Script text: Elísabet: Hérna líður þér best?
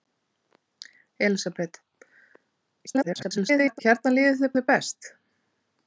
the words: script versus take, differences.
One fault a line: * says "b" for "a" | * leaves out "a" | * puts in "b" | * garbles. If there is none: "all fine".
* garbles
* puts in "þér"